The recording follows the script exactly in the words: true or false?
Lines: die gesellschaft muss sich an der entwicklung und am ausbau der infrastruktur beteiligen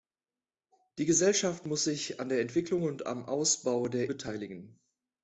false